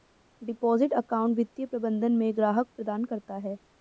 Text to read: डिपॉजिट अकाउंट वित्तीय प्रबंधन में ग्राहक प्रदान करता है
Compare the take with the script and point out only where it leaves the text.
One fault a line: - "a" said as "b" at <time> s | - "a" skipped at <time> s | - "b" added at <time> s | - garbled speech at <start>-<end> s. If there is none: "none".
none